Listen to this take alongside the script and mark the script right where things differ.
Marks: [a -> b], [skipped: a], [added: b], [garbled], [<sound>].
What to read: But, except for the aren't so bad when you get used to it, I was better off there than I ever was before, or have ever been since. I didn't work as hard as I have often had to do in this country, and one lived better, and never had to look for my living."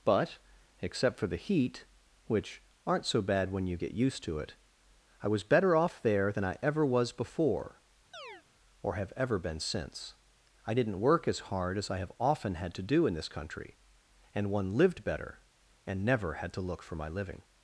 But, except for the [added: heat which] aren't so bad when you get used to it, I was better off there than I ever was before, [chirp] or have ever been since. I didn't work as hard as I have often had to do in this country, and one lived better, and never had to look for my living."